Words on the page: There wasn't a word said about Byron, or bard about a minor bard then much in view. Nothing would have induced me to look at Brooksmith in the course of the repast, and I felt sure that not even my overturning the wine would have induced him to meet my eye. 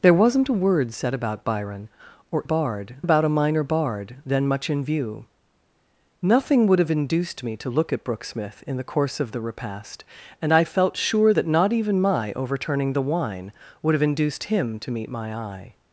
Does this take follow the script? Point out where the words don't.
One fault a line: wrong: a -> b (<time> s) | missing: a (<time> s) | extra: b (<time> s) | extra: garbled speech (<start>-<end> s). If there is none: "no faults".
no faults